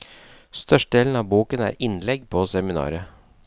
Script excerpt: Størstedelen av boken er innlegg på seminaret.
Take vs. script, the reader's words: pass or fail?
pass